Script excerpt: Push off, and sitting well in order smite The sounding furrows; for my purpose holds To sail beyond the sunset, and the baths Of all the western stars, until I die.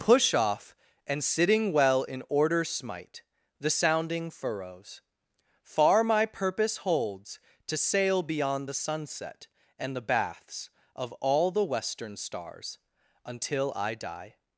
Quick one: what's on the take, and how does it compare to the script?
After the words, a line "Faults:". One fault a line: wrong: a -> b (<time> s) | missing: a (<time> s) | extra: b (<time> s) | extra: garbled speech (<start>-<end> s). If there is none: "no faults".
Push off, and sitting well in order smite The sounding furrows; far my purpose holds To sail beyond the sunset, and the baths Of all the western stars, until I die.
Faults:
wrong: for -> far (5.6 s)